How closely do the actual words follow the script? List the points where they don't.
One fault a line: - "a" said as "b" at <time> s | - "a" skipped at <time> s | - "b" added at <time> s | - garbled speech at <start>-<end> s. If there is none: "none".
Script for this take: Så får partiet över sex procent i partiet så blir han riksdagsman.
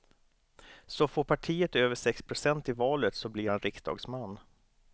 - "partiet" said as "valet" at 2.7 s